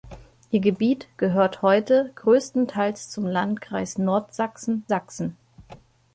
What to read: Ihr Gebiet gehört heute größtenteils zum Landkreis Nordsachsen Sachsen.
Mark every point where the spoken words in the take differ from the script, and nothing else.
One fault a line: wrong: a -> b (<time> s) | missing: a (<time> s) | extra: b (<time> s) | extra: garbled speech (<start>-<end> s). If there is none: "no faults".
no faults